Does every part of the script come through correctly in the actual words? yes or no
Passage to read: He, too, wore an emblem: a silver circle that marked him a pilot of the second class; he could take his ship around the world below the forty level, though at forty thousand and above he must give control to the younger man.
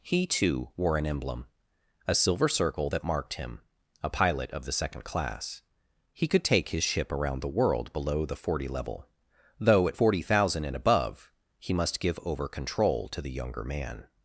no